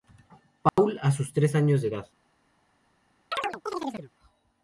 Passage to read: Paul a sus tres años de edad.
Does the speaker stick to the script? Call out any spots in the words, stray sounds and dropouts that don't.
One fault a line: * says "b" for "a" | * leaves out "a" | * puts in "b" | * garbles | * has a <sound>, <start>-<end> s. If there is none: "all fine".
* has a dropout, 0.7-0.8 s
* has a chirp, 3.3-4.1 s